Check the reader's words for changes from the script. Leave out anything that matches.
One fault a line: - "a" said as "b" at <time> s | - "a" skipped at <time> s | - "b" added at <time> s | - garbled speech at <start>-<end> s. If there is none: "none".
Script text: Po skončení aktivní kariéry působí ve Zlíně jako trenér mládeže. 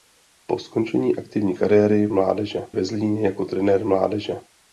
- "působí" said as "mládeže" at 2.1 s